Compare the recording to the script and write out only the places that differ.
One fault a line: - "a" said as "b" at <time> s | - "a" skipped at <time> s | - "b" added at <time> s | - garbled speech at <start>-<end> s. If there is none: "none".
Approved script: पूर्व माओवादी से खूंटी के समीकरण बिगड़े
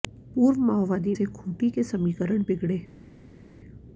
none